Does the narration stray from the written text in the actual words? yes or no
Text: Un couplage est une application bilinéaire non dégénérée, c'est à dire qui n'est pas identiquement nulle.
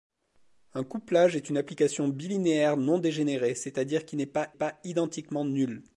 yes